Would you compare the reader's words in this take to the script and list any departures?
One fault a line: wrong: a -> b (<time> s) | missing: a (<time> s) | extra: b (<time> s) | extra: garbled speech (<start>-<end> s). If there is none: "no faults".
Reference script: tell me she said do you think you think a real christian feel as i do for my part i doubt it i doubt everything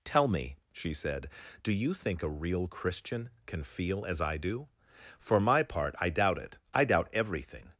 missing: you think (2.2 s)
extra: can (3.5 s)